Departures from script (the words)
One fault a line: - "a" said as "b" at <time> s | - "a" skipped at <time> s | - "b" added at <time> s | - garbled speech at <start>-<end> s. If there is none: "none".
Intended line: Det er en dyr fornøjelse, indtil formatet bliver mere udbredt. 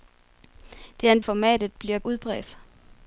- "dyr fornøjelse indtil" skipped at 1.2 s
- "mere" skipped at 2.0 s